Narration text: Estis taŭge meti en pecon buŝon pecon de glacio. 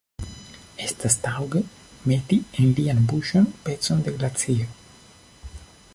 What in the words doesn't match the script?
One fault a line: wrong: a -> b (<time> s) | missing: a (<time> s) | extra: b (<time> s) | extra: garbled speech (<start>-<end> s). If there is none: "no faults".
wrong: Estis -> Estas (0.8 s)
wrong: pecon -> lian (2.8 s)